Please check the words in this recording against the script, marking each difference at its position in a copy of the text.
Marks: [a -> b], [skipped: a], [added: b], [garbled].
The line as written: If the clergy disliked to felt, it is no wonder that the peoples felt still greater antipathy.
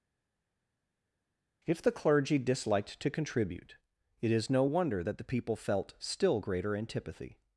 If the clergy disliked to [felt, -> contribute] it is no wonder that the [peoples -> people] felt still greater antipathy.